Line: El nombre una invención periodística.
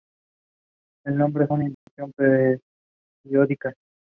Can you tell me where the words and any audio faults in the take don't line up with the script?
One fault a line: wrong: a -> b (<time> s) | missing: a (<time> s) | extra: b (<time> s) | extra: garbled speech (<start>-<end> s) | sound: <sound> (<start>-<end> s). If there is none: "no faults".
sound: dropout (1.7-1.9 s)